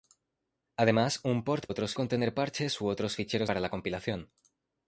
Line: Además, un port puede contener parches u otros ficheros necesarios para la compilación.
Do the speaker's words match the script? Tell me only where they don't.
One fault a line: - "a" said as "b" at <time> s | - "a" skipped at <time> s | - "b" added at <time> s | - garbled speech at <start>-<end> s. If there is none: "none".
- "puede" said as "otros" at 1.7 s
- "necesarios" skipped at 3.5 s